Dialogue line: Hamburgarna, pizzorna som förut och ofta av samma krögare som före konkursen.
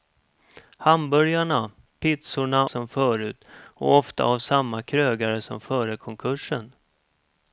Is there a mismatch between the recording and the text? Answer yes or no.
no